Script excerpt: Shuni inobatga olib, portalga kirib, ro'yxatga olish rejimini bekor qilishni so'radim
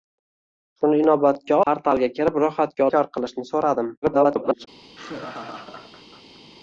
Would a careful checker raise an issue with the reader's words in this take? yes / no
yes